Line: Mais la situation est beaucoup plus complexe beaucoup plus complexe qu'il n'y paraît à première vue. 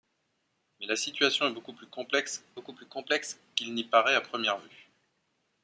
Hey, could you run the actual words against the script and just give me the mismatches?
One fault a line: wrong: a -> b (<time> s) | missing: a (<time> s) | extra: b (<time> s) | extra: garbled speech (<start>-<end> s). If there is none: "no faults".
no faults